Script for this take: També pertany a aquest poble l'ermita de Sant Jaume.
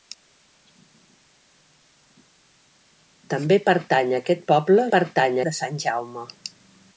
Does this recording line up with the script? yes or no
no